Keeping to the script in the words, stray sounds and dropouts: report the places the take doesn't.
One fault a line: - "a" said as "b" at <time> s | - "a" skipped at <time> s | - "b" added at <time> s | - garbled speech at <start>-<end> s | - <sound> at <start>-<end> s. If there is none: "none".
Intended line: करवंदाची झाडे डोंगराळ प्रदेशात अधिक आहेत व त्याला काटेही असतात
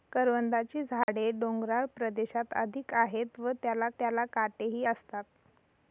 - dropout at 1.0-1.1 s
- "त्याला" added at 4.0 s